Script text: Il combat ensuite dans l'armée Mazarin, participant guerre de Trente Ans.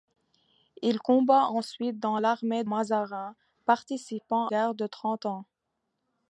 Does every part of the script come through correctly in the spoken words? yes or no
yes